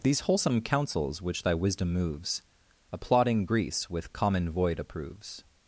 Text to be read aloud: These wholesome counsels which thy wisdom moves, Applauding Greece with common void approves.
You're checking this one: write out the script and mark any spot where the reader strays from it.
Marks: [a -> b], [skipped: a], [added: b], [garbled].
These wholesome counsels which thy wisdom moves, Applauding Greece with common void approves.